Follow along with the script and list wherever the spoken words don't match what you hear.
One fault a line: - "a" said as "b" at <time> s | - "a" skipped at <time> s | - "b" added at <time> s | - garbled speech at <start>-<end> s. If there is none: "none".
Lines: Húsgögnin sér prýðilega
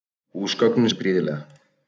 none